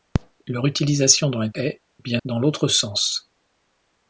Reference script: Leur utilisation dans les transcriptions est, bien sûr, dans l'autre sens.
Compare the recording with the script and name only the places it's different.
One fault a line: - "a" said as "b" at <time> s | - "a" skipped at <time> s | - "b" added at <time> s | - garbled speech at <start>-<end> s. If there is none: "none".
- "transcriptions" skipped at 1.5 s
- "sûr" skipped at 2.2 s